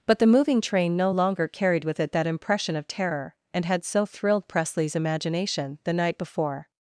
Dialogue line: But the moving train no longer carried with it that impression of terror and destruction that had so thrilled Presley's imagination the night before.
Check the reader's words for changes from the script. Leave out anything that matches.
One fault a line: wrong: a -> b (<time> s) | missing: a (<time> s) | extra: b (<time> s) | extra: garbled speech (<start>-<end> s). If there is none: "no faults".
missing: destruction that (3.6 s)